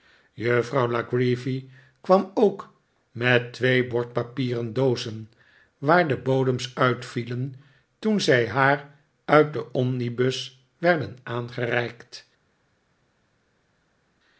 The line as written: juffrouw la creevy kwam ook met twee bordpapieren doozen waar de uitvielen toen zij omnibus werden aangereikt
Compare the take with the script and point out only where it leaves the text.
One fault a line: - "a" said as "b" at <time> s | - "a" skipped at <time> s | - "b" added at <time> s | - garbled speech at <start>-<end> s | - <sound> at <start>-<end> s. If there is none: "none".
- "bodems" added at 6.2 s
- "haar uit den" added at 8.5 s